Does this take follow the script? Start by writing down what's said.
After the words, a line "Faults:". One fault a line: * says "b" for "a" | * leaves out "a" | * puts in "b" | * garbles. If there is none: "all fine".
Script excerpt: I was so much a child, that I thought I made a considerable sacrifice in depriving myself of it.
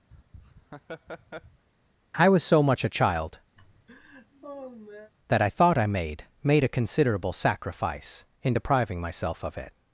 I was so much a child, that I thought I made made a considerable sacrifice in depriving myself of it.
Faults:
* puts in "made"